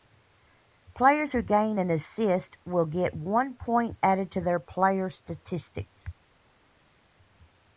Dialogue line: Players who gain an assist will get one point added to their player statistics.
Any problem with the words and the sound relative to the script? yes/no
no